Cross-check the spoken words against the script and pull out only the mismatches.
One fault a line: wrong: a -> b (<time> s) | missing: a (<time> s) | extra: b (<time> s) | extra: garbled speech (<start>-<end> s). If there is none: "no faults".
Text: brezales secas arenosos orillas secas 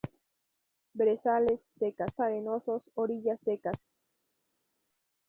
no faults